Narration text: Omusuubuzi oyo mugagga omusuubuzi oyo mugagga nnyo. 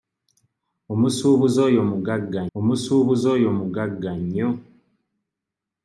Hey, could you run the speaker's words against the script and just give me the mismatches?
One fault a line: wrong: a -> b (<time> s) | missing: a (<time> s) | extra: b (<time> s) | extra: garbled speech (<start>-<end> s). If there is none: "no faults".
no faults